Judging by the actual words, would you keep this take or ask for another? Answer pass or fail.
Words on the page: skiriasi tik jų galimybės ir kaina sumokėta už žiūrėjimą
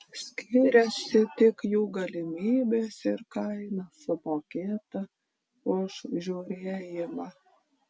pass